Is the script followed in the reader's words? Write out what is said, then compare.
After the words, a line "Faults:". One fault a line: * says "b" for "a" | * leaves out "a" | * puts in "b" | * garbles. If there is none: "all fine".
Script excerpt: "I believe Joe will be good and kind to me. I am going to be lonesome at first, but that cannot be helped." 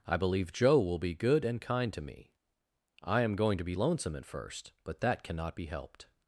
"I believe Joe will be good and kind to me. I am going to be lonesome at first, but that cannot be helped."
Faults:
all fine